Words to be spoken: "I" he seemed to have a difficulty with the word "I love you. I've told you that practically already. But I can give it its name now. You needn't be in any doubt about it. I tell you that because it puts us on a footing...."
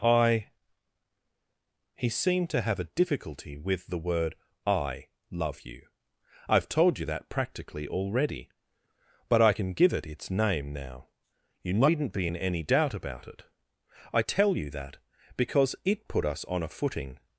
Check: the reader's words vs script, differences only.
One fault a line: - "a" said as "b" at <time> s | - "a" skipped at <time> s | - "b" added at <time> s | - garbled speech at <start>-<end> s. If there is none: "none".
- "puts" said as "put" at 16.1 s